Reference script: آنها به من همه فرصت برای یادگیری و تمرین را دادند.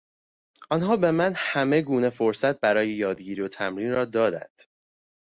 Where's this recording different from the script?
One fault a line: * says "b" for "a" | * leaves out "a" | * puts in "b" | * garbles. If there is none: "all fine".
* puts in "گونه"